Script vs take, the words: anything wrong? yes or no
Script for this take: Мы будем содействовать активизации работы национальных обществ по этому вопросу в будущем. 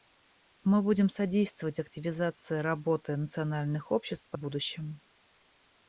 yes